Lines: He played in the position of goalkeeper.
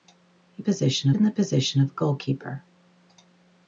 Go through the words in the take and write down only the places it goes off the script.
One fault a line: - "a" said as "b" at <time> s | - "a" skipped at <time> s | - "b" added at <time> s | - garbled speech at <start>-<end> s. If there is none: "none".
- "played" said as "position" at 0.6 s